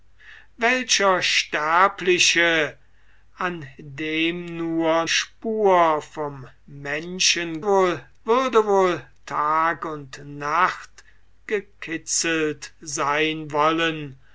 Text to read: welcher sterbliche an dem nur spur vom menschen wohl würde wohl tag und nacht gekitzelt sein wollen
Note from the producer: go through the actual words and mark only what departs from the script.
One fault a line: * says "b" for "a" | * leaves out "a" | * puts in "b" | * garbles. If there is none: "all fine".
all fine